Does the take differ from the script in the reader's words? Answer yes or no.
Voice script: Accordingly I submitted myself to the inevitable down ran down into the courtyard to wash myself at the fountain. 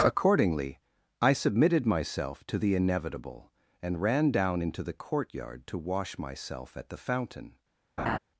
yes